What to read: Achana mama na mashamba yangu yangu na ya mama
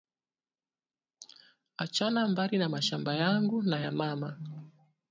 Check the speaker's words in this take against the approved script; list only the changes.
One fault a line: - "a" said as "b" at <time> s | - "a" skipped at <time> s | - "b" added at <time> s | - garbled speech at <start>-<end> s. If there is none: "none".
- "mama" said as "mbari" at 2.3 s
- "yangu" skipped at 3.6 s